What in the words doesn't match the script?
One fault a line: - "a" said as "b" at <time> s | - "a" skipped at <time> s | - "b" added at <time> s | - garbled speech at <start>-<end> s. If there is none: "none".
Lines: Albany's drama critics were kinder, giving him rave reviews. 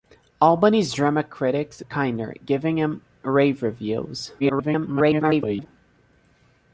- "were" skipped at 1.8 s
- garbled speech at 4.4-5.7 s